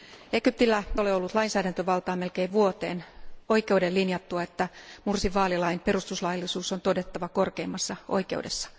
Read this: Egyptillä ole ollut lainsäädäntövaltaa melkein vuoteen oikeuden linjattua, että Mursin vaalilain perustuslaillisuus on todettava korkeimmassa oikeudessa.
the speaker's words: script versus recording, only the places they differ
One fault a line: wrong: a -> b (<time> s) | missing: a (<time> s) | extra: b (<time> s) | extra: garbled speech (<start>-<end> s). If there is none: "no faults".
no faults